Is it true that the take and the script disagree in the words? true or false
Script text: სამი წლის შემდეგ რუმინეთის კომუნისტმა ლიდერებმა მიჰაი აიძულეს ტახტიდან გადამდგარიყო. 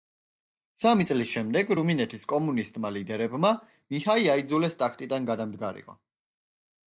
false